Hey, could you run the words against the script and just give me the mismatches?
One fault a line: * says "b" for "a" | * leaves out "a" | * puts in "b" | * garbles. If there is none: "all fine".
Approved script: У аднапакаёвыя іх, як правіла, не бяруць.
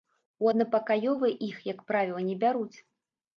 all fine